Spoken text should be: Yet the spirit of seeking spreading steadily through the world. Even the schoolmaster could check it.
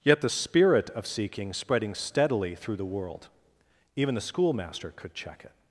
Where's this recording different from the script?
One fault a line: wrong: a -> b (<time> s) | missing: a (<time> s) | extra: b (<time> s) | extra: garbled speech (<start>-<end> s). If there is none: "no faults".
no faults